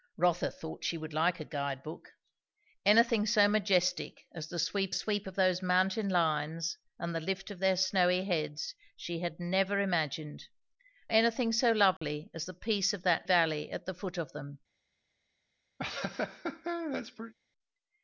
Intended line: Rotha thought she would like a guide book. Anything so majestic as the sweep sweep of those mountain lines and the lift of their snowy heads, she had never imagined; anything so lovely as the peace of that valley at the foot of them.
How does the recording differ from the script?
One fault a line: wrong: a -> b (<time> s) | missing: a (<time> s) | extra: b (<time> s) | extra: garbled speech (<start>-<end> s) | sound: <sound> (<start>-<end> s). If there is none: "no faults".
sound: dropout (12.0-12.0 s)
sound: laugh (15.8-17.3 s)